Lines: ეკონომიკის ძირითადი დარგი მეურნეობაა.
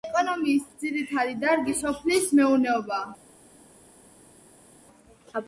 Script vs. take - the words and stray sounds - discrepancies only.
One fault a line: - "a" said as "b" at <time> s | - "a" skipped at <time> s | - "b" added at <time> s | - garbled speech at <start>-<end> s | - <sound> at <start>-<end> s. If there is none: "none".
- "სოფლის" added at 1.8 s